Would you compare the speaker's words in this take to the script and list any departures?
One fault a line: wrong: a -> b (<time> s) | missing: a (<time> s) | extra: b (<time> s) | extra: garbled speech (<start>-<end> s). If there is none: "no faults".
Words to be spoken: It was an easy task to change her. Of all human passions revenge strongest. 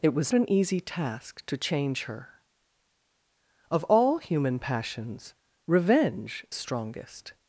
no faults